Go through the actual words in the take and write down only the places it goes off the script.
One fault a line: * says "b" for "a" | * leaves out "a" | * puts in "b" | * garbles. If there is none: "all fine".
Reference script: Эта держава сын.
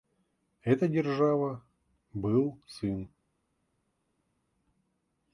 * puts in "был"